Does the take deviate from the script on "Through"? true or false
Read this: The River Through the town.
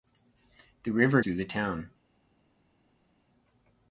false